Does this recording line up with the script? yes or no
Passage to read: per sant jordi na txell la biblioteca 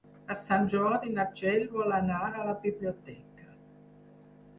no